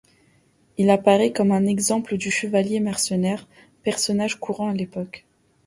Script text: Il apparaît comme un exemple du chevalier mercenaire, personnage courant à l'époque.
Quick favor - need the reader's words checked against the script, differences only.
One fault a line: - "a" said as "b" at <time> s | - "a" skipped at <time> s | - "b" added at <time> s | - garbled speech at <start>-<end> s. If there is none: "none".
none